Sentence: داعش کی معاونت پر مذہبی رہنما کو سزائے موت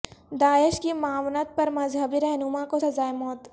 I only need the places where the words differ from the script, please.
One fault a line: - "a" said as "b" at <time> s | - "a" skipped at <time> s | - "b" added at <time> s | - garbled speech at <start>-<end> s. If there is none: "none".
none